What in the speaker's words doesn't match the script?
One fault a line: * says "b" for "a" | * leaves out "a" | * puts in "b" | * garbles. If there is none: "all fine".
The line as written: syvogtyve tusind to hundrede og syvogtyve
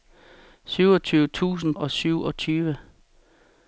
* leaves out "to hundrede"